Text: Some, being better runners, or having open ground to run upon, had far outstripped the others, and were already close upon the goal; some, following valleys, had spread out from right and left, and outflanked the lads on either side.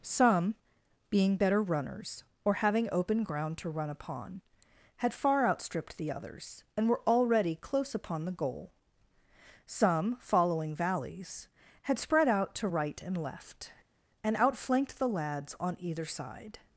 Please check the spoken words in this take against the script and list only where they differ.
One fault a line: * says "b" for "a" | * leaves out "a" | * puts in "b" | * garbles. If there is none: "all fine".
* says "to" for "from"